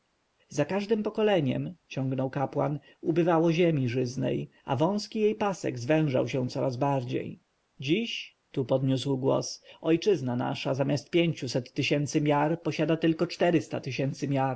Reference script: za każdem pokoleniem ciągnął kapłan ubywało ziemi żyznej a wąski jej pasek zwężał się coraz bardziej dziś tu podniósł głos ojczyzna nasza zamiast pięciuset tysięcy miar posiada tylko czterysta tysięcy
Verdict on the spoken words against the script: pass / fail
pass